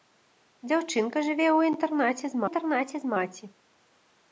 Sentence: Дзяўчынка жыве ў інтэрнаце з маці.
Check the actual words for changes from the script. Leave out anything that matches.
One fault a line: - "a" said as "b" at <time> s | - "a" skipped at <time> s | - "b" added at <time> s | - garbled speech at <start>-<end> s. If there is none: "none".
- "інтэрнаце з" added at 2.5 s